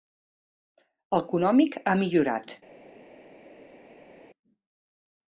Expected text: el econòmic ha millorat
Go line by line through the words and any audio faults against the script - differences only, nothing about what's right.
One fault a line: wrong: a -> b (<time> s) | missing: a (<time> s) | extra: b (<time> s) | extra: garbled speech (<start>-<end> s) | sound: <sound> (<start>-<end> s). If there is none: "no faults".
no faults